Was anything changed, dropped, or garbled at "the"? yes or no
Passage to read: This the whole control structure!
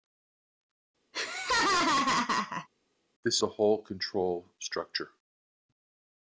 no